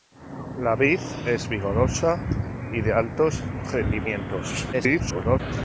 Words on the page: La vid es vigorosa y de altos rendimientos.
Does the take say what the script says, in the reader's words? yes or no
no